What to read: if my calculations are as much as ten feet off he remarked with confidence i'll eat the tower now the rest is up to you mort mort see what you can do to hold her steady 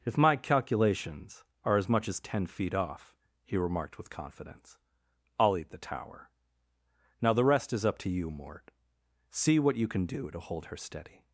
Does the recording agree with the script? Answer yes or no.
no